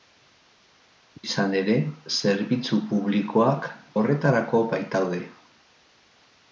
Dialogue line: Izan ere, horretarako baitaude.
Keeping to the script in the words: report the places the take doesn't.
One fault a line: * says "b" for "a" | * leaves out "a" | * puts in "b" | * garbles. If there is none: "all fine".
* puts in "zerbitzu publikoak"